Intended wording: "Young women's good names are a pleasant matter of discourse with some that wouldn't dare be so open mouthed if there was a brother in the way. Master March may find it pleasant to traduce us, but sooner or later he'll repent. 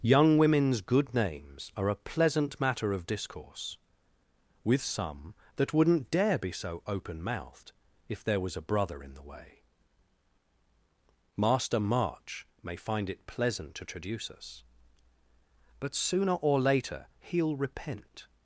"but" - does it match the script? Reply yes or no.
yes